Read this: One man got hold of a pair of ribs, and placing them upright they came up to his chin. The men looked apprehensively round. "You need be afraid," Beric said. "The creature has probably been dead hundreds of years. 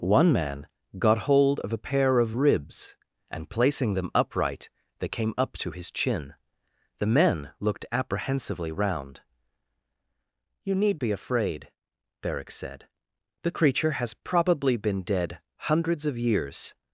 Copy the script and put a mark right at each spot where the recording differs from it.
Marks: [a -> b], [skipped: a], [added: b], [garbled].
One man got hold of a pair of ribs, and placing them upright they came up to his chin. The men looked apprehensively round. "You need be afraid," Beric said. "The creature has probably been dead hundreds of years.